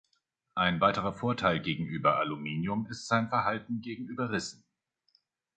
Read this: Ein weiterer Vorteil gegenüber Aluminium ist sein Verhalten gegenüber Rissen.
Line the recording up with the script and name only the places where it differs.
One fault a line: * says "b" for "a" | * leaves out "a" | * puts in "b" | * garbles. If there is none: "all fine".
all fine